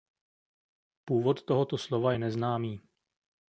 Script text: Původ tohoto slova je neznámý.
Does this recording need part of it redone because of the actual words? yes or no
no